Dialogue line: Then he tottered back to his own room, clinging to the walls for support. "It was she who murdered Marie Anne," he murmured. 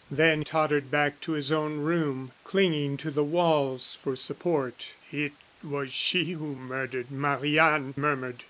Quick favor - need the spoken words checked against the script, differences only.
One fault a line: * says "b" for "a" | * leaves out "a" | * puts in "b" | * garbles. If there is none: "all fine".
* leaves out "he"
* leaves out "he"